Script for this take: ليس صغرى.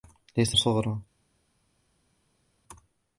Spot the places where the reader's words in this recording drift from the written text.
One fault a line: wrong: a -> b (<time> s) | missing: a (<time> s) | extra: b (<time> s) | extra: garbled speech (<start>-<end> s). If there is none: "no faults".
no faults